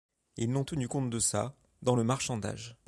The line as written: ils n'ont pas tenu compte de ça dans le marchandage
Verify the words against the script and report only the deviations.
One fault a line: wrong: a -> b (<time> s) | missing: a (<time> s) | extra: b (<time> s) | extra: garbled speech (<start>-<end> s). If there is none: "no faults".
missing: pas (0.6 s)